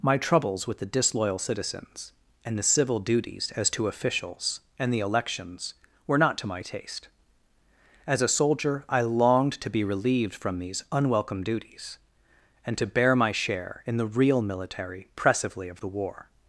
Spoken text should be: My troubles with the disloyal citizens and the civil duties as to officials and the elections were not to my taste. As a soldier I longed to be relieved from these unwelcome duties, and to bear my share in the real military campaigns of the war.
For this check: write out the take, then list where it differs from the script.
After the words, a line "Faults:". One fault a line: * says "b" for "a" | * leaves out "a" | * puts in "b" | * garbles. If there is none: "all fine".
My troubles with the disloyal citizens and the civil duties as to officials and the elections were not to my taste. As a soldier I longed to be relieved from these unwelcome duties, and to bear my share in the real military pressively of the war.
Faults:
* says "pressively" for "campaigns"